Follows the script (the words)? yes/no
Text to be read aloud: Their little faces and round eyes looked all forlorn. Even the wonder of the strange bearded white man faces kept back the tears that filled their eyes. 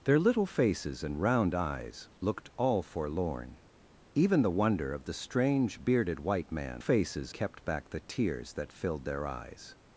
yes